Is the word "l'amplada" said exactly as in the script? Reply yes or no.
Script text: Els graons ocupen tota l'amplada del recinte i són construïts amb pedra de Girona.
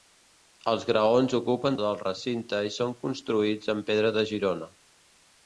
no